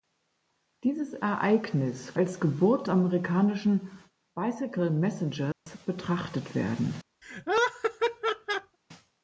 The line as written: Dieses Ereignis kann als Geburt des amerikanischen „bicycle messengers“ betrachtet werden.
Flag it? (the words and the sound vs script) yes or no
yes